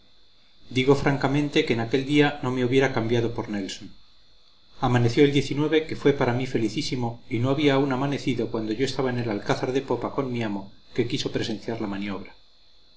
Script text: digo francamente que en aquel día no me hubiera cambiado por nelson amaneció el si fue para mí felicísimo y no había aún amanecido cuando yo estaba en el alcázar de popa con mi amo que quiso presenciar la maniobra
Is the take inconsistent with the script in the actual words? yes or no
yes